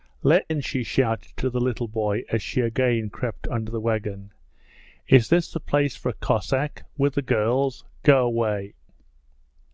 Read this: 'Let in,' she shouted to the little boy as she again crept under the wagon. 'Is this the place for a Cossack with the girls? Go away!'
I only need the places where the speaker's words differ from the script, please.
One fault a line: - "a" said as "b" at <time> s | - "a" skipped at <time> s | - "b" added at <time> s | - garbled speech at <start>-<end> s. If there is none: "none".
none